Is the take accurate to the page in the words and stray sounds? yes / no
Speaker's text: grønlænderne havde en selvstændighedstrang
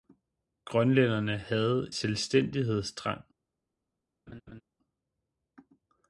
no